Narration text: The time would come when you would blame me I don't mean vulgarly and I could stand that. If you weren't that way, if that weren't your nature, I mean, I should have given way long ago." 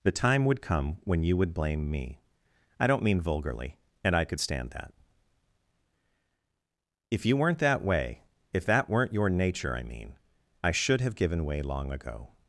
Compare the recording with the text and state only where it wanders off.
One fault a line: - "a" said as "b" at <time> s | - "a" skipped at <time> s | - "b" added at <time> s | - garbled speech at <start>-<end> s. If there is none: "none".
none